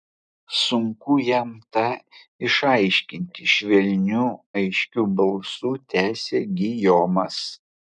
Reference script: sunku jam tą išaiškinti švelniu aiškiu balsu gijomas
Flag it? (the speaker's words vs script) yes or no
yes